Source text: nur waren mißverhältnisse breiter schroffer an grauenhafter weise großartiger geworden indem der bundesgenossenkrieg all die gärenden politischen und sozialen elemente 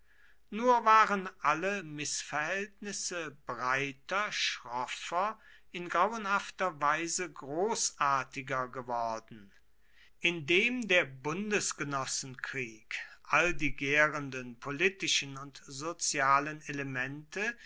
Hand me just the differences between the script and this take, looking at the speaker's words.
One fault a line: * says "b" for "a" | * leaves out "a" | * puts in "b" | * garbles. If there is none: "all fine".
* puts in "alle"
* says "in" for "an"